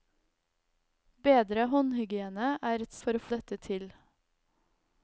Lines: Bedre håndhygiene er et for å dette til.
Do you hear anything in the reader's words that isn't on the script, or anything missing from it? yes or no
no